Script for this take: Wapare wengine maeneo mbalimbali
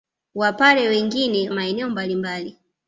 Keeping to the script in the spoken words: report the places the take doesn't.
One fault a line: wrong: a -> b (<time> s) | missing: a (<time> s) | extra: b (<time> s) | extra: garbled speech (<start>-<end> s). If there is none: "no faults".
no faults